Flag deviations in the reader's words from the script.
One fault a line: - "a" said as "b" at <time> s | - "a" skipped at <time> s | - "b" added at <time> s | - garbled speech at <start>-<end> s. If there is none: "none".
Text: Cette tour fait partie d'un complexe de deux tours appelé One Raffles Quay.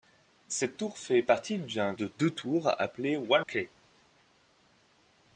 - "complexe" skipped at 1.9 s
- "Raffles" skipped at 3.4 s